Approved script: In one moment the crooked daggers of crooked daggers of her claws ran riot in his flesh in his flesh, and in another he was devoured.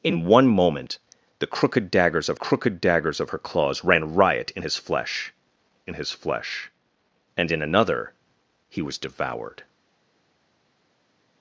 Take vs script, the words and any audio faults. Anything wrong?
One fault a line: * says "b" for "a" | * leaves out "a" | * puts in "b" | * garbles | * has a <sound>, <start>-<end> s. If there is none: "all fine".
all fine